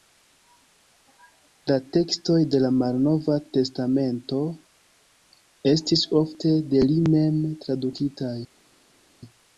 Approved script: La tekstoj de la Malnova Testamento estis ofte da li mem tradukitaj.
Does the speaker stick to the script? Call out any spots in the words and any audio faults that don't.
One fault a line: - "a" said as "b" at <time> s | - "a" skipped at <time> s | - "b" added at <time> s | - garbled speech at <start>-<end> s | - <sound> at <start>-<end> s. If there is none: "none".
- "da" said as "de" at 6.8 s